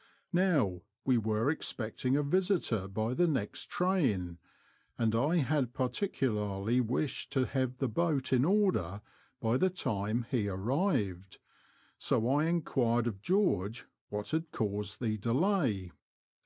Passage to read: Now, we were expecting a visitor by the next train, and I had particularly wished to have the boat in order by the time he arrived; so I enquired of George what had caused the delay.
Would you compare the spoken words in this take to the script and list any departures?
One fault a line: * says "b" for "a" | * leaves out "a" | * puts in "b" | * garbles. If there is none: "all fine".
all fine